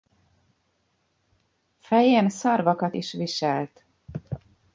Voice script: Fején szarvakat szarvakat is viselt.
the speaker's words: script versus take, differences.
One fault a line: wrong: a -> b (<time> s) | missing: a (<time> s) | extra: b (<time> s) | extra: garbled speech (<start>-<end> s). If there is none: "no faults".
missing: szarvakat (3.0 s)